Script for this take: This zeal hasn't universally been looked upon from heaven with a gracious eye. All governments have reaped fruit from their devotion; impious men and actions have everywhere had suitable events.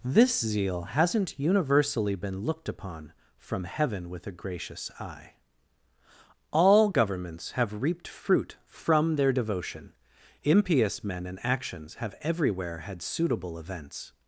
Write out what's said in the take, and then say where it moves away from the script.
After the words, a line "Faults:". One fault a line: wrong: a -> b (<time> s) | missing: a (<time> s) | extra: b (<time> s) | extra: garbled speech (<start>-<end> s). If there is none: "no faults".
This zeal hasn't universally been looked upon from heaven with a gracious eye. All governments have reaped fruit from their devotion; impious men and actions have everywhere had suitable events.
Faults:
no faults